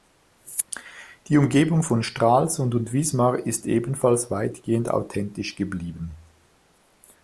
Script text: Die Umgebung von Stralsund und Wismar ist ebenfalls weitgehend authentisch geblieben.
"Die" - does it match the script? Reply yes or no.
yes